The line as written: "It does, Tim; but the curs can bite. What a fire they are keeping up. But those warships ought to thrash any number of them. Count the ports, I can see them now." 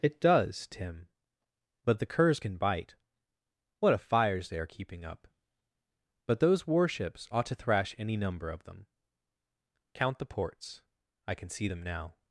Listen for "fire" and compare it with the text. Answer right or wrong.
wrong